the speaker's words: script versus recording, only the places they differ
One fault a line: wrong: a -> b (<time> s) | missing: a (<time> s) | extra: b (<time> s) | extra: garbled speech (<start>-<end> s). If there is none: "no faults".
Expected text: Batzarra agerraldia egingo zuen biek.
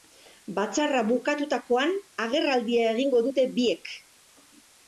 extra: bukatutakoan (1.1 s)
wrong: zuen -> dute (3.3 s)